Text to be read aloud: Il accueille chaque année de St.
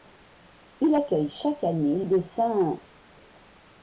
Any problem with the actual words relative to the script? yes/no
no